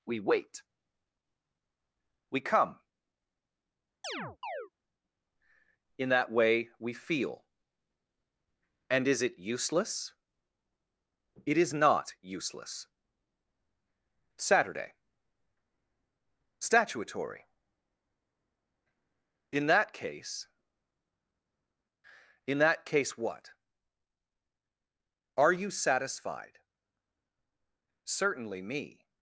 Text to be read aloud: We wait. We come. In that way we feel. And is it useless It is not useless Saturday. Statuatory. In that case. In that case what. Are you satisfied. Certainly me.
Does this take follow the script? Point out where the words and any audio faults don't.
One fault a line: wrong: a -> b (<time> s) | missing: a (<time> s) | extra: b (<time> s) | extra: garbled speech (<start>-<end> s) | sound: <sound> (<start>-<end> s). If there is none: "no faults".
sound: chirp (4.0-4.7 s)